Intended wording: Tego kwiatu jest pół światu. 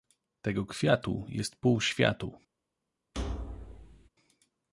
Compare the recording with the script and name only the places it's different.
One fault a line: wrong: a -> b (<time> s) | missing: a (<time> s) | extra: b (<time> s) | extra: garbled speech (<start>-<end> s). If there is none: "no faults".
no faults